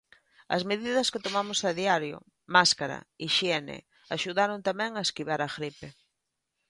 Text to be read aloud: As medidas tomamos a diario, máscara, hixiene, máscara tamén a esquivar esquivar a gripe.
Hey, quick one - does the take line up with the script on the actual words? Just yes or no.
no